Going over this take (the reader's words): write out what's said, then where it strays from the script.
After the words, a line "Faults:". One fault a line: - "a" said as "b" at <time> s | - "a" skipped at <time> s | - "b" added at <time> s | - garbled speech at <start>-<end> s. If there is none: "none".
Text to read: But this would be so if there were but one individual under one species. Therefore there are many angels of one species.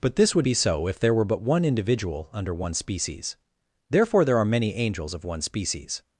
But this would be so if there were but one individual under one species. Therefore there are many angels of one species.
Faults:
none